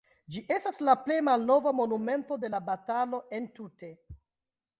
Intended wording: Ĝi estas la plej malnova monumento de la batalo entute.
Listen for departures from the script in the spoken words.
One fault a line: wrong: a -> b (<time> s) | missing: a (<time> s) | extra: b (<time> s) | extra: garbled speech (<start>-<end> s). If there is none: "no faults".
no faults